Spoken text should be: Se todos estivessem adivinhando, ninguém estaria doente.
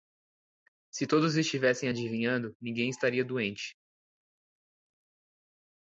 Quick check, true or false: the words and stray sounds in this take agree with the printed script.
true